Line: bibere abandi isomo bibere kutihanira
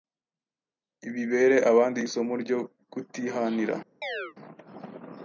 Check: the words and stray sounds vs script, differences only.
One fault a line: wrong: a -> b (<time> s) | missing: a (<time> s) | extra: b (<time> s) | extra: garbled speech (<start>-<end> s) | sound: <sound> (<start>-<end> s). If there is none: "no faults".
wrong: bibere -> ryo (2.4 s)
sound: chirp (4.0-4.3 s)